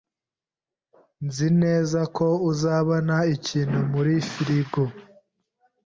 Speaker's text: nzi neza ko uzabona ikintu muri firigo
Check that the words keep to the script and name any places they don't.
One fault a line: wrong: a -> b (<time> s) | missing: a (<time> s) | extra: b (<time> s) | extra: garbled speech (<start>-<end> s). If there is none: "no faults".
no faults